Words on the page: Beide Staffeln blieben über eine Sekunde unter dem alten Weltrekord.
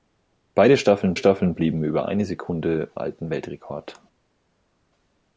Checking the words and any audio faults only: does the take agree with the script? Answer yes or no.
no